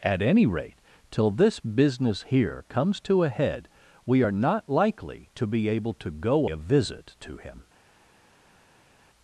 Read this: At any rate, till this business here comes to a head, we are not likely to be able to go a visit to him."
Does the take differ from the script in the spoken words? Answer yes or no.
no